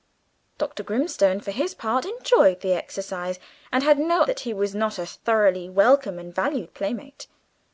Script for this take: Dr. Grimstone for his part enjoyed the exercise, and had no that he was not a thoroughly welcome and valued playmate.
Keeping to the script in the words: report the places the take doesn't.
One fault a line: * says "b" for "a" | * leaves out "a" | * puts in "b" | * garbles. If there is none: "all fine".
all fine